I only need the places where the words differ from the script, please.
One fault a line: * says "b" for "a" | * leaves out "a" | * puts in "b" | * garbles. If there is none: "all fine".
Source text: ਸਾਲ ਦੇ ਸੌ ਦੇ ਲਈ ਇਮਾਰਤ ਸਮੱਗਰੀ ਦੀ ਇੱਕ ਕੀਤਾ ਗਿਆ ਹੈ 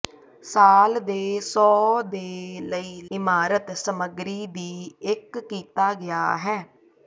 all fine